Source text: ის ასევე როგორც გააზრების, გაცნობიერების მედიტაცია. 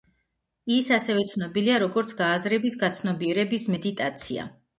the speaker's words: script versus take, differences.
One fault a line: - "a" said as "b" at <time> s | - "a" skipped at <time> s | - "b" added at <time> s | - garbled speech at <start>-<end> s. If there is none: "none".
- "ცნობილია" added at 1.3 s